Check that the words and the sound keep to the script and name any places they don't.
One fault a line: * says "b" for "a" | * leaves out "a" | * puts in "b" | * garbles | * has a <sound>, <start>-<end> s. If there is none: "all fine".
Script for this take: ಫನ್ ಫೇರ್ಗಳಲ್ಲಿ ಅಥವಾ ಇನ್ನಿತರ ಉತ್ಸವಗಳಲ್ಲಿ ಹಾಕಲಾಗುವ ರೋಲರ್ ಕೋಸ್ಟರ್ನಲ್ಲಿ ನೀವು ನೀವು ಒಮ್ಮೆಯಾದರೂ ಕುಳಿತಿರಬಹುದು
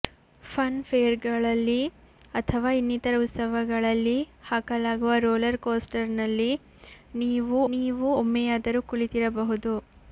all fine